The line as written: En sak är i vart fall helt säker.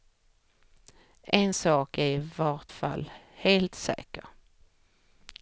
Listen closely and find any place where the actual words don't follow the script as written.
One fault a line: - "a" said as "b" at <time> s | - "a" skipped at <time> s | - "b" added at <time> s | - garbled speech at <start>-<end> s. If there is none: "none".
none